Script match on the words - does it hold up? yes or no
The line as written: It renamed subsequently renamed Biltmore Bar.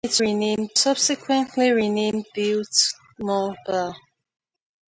yes